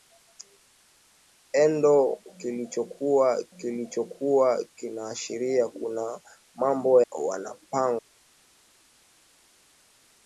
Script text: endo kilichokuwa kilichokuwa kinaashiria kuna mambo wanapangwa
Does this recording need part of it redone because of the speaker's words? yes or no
no